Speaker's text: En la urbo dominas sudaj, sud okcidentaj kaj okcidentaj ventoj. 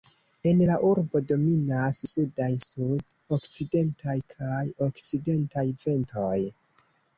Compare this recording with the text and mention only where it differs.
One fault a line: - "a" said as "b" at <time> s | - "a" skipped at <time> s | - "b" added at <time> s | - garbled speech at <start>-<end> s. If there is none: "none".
none